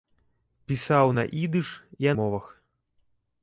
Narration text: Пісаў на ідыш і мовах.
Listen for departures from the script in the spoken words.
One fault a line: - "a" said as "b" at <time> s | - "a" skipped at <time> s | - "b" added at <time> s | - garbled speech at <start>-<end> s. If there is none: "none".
none